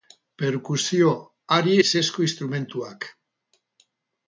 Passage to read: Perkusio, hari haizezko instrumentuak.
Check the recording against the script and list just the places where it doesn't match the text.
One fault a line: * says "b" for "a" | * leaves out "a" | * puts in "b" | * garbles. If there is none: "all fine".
all fine